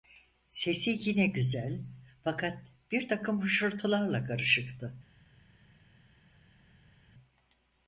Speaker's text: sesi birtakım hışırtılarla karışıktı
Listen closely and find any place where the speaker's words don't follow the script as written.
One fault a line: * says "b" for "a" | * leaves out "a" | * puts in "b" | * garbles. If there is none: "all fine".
* puts in "yine güzel fakat"